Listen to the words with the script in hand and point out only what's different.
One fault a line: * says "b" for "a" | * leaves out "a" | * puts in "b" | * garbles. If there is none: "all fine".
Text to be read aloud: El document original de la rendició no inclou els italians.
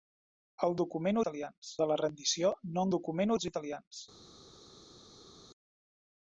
* says "italians" for "original"
* says "document" for "inclou"